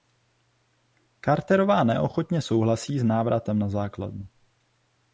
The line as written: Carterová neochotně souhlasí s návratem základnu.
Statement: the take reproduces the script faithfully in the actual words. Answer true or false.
false